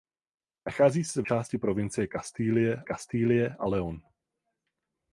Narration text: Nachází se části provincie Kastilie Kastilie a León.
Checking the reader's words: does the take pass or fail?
pass